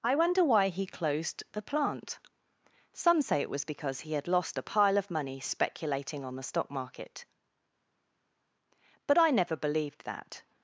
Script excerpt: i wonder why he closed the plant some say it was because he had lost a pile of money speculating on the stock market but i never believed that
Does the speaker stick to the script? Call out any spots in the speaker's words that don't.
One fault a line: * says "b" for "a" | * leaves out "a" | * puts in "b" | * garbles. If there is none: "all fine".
all fine